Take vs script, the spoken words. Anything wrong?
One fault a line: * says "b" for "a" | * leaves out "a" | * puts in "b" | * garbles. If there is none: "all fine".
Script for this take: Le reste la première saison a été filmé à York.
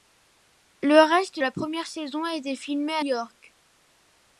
all fine